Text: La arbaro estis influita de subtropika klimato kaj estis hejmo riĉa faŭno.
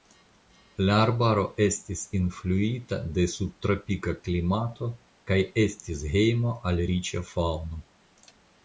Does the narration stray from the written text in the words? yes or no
yes